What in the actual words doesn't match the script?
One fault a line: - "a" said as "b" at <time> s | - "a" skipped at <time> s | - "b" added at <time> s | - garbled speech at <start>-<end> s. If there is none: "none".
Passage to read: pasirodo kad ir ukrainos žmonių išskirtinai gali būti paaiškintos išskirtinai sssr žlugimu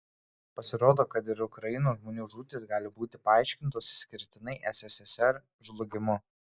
- "išskirtinai" said as "žūtys" at 2.3 s